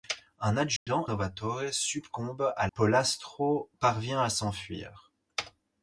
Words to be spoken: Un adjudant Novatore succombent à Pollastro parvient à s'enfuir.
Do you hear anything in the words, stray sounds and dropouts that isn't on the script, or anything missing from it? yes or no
yes